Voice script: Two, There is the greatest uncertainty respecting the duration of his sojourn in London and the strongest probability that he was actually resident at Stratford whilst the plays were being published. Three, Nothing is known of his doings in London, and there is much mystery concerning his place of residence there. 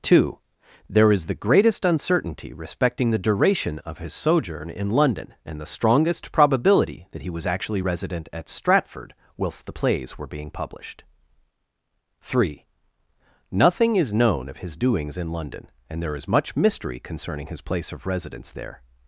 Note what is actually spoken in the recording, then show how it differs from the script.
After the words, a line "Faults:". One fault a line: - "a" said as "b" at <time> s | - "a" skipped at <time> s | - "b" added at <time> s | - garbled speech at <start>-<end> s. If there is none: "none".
Two, There is the greatest uncertainty respecting the duration of his sojourn in London and the strongest probability that he was actually resident at Stratford whilst the plays were being published. Three, Nothing is known of his doings in London, and there is much mystery concerning his place of residence there.
Faults:
none